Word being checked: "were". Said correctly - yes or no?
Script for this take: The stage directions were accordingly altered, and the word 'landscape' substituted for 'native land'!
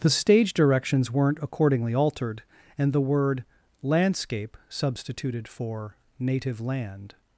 no